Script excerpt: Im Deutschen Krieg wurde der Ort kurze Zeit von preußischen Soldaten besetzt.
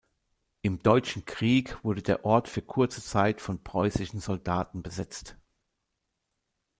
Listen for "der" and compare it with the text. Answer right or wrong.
right